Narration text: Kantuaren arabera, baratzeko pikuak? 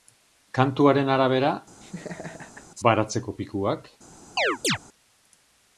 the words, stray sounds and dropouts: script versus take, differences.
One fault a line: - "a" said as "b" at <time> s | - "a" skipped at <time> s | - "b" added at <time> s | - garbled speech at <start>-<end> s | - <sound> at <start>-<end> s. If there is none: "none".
- laugh at 1.8-2.7 s
- chirp at 4.4-4.8 s